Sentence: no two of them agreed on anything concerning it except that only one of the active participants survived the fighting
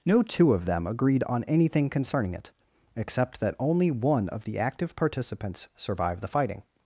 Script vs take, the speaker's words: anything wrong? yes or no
no